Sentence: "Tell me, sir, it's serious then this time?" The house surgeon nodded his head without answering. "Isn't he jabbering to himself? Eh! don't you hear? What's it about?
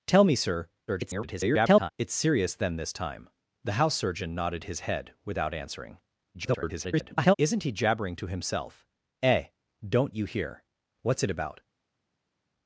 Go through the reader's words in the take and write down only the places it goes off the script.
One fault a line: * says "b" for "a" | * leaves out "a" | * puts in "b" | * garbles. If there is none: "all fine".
* garbles
* garbles